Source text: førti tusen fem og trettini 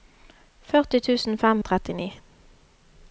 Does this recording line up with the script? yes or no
yes